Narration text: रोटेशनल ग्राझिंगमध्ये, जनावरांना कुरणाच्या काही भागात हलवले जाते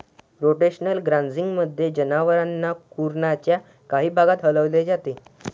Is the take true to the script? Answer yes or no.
yes